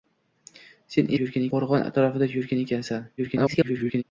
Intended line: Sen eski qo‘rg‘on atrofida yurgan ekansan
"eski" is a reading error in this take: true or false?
true